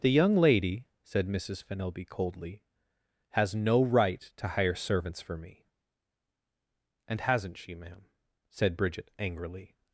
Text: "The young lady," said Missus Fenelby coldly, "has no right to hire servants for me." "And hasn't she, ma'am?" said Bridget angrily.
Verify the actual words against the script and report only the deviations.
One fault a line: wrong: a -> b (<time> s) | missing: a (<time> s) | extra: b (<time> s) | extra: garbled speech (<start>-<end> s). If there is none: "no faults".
no faults